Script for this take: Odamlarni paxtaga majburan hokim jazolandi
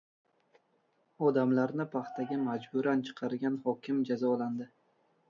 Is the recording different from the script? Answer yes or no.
yes